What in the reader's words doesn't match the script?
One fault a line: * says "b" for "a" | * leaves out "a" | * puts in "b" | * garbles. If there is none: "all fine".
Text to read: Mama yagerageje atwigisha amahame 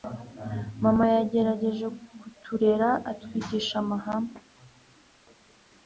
* puts in "kuturera"